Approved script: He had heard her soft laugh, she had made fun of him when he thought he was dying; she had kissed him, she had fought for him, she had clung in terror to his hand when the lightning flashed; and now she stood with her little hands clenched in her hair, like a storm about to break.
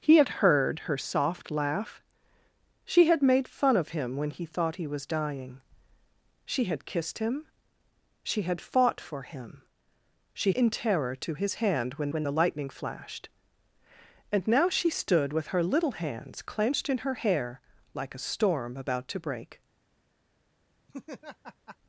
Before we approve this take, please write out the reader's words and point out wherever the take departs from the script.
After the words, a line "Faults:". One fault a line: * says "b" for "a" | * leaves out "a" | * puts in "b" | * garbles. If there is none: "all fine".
He had heard her soft laugh, she had made fun of him when he thought he was dying; she had kissed him, she had fought for him, she in terror to his hand when when the lightning flashed; and now she stood with her little hands clenched in her hair, like a storm about to break.
Faults:
* leaves out "had clung"
* puts in "when"